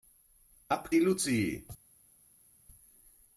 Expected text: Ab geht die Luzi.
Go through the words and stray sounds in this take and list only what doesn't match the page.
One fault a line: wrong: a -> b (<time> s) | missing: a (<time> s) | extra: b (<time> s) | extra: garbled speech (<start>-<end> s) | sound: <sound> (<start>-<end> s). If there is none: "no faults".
missing: geht (0.9 s)